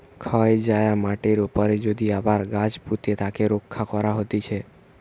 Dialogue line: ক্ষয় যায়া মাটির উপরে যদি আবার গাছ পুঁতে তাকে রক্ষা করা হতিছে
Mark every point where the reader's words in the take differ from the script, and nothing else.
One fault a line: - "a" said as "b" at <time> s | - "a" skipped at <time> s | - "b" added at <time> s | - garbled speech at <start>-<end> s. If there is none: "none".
none